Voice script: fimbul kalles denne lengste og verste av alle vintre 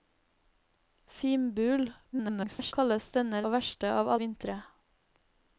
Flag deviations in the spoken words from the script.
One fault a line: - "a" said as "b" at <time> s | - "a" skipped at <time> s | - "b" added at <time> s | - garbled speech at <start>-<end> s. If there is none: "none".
- garbled speech at 2.1-2.7 s
- "lengste" skipped at 3.4 s
- "alle" skipped at 4.1 s